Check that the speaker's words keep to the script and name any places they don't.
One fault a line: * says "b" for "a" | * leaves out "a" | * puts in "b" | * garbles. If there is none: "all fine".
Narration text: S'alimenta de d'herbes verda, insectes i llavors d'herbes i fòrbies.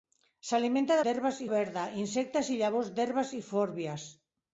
all fine